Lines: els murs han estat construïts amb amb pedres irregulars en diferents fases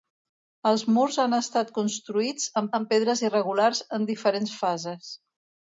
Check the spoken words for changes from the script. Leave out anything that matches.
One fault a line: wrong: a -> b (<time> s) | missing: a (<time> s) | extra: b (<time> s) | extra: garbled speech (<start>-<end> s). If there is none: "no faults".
no faults